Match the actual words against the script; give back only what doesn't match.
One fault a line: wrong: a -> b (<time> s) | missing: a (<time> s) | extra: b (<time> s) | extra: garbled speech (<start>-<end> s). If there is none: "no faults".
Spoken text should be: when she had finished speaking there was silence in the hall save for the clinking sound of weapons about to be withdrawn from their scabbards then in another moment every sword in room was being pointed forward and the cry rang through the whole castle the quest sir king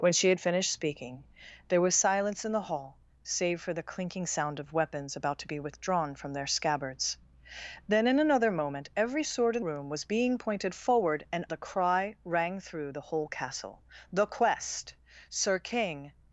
no faults